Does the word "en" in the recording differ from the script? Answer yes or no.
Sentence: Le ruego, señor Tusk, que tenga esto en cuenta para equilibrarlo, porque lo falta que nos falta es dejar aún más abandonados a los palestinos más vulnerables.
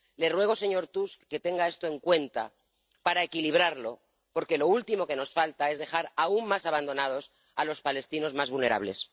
no